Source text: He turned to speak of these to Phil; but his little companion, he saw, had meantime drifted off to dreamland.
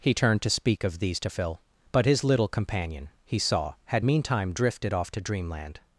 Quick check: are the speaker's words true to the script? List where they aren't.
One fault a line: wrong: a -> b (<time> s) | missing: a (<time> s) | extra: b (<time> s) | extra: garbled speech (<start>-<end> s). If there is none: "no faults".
no faults